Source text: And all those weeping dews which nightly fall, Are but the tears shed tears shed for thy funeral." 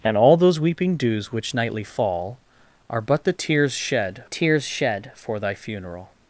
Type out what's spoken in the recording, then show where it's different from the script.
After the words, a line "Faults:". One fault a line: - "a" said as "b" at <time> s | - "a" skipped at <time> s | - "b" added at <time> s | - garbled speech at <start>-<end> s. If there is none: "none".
And all those weeping dews which nightly fall, Are but the tears shed tears shed for thy funeral."
Faults:
none